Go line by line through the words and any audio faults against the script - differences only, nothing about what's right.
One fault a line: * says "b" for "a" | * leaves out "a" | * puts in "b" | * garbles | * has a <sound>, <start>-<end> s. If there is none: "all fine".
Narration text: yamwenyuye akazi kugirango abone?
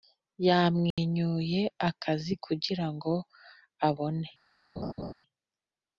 * has a dropout, 0.9-1.0 s
* has a laugh, 4.8-5.1 s